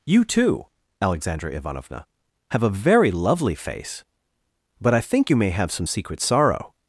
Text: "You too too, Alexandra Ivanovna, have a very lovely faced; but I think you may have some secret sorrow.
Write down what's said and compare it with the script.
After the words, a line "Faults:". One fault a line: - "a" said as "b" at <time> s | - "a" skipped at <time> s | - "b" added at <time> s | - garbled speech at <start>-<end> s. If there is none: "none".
"You too, Alexandra Ivanovna, have a very lovely face; but I think you may have some secret sorrow.
Faults:
- "too" skipped at 0.7 s
- "faced" said as "face" at 3.6 s